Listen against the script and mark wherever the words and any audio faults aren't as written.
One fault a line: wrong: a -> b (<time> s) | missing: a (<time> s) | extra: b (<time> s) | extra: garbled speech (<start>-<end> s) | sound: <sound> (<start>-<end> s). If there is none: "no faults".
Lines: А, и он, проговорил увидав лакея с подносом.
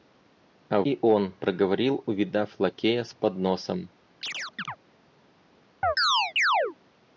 sound: chirp (4.2-4.8 s)
sound: chirp (5.8-6.8 s)